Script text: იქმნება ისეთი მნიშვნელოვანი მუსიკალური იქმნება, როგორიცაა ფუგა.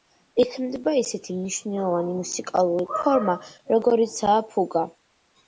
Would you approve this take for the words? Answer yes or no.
no